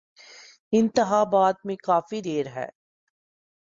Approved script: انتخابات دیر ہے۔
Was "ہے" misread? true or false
false